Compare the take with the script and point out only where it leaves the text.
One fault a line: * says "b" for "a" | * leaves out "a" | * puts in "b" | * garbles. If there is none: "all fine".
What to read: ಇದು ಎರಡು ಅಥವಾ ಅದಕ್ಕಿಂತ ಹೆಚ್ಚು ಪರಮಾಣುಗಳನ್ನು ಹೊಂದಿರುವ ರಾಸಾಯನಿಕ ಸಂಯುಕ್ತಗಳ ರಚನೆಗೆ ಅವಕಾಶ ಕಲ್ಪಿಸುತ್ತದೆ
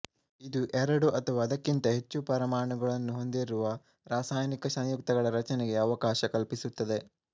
all fine